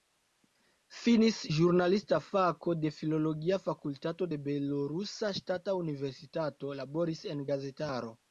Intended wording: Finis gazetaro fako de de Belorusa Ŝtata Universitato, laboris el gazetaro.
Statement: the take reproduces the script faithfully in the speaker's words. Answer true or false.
false